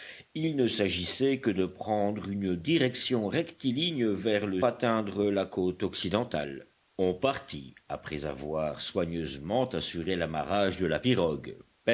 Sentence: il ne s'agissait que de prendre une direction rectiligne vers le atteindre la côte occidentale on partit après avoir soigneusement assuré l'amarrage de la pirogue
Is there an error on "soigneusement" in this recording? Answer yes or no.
no